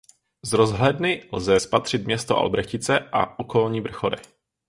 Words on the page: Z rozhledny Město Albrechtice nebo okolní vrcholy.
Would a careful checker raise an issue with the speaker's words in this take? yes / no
yes